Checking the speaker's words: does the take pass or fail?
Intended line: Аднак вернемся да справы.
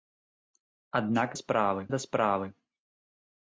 fail